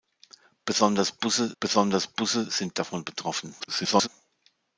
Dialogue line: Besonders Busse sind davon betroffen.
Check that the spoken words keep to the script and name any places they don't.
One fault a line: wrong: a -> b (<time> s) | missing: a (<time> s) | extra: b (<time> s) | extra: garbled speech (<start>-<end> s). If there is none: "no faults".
extra: besonders Busse (1.6 s)
extra: garbled speech (3.6-4.1 s)